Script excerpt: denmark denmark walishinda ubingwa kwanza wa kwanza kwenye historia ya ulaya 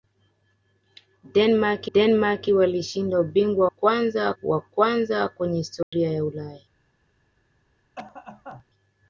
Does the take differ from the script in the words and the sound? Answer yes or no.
yes